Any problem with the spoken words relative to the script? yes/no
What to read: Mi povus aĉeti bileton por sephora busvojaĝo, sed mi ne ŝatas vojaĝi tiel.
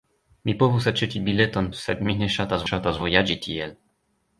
yes